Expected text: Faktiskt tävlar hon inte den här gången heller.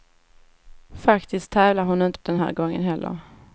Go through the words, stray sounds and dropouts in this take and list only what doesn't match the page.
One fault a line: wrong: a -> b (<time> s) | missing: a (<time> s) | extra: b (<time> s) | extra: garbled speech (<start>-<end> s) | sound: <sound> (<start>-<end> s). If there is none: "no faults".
no faults